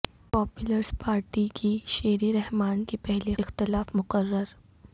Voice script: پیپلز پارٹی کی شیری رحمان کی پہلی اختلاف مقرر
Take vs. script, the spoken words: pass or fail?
pass